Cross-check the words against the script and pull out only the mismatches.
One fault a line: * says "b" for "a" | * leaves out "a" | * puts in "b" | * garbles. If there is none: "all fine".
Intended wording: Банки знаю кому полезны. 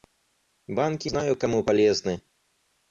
all fine